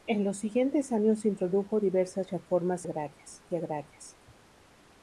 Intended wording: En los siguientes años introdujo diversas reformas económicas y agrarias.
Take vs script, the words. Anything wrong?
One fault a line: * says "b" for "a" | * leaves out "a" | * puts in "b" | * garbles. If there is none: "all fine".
* says "agrarias" for "económicas"